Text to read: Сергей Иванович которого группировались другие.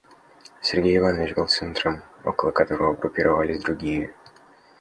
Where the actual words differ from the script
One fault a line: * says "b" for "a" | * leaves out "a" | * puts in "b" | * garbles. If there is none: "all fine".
* puts in "был центром около"